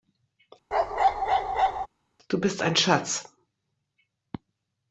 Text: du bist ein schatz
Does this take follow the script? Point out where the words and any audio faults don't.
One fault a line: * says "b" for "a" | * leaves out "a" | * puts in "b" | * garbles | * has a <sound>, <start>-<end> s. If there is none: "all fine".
* has a bark, 0.7-1.9 s